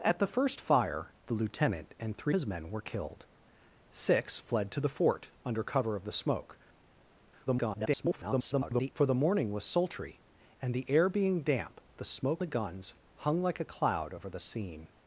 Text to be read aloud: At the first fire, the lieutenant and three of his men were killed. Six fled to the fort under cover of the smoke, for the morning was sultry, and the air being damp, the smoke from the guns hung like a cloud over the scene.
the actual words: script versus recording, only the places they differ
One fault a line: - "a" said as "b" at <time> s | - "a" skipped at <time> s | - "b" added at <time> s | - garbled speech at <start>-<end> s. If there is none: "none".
- "of" skipped at 2.4 s
- garbled speech at 7.5-8.9 s
- "from" skipped at 12.4 s